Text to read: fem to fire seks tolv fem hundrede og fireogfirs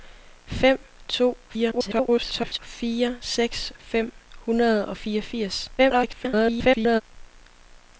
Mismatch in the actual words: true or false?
true